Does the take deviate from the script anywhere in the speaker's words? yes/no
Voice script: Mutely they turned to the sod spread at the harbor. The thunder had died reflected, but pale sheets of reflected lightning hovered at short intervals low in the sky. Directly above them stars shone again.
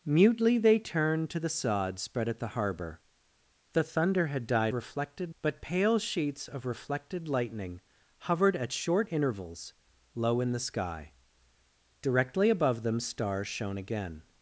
no